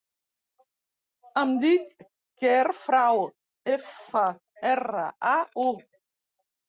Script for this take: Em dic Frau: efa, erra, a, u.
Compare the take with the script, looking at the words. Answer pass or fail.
fail